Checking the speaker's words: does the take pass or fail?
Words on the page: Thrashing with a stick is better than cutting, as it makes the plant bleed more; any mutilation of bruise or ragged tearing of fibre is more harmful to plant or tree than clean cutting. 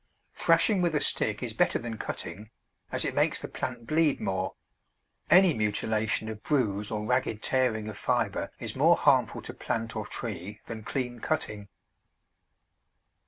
pass